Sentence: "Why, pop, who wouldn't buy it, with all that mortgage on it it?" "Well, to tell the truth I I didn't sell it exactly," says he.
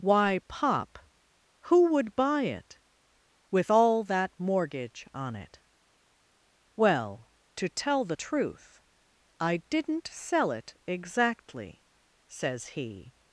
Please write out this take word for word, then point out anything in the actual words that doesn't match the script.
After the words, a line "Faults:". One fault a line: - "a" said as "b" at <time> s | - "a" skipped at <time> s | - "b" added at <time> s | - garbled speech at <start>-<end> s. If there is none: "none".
"Why, pop, who would buy it, with all that mortgage on it?" "Well, to tell the truth I didn't sell it exactly," says he.
Faults:
- "wouldn't" said as "would" at 1.9 s
- "it" skipped at 5.6 s
- "I" skipped at 9.6 s